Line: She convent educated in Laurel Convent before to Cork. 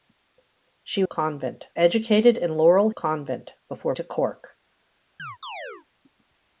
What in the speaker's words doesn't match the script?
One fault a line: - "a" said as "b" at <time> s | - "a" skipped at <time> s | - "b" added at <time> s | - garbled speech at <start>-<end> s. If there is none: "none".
none